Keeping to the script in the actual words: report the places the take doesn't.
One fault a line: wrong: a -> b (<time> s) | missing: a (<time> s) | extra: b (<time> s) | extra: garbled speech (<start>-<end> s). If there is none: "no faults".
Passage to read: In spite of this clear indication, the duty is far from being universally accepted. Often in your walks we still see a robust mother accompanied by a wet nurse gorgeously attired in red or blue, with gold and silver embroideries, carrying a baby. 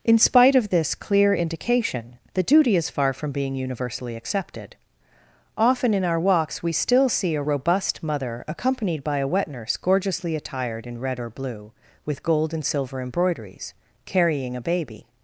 wrong: your -> our (6.0 s)